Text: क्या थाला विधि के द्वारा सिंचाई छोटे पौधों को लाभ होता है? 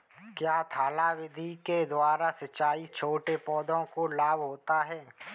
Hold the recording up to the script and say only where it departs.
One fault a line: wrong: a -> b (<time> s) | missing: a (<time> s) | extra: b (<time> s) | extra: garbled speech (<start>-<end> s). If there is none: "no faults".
no faults